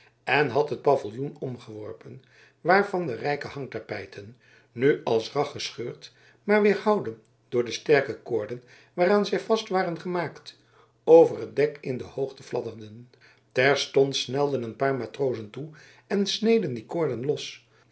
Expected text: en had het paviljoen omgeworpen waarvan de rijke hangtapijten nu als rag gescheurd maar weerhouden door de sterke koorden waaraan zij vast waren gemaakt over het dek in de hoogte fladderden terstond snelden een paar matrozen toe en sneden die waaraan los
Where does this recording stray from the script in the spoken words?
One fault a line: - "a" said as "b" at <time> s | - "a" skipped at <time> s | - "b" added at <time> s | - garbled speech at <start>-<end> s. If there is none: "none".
- "waaraan" said as "koorden" at 16.9 s